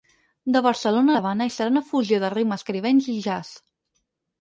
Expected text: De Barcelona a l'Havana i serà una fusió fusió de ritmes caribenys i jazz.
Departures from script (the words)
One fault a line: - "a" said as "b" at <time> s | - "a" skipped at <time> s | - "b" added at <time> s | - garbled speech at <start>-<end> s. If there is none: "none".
- "fusió" skipped at 2.2 s